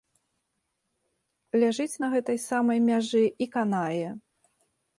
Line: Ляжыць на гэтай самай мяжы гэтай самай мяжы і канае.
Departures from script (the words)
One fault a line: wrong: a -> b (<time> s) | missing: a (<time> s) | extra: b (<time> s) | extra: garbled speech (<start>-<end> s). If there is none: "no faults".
missing: гэтай самай мяжы (3.2 s)